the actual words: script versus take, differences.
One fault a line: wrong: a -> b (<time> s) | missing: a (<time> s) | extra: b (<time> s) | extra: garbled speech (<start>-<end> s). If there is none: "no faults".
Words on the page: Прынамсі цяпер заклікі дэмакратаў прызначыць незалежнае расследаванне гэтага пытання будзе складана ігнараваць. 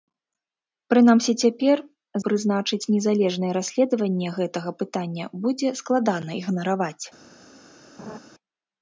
missing: заклікі дэмакратаў (1.8 s)